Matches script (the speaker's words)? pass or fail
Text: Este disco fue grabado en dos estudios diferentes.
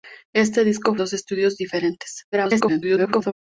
fail